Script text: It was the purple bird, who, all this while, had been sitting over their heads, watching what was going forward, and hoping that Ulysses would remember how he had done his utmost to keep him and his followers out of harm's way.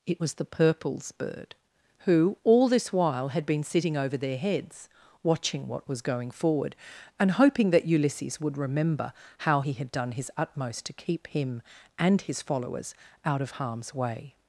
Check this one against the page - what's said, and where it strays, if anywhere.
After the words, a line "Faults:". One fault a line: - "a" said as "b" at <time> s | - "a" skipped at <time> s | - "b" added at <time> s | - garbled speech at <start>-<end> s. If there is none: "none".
It was the purples bird, who, all this while, had been sitting over their heads, watching what was going forward, and hoping that Ulysses would remember how he had done his utmost to keep him and his followers out of harm's way.
Faults:
- "purple" said as "purples" at 0.4 s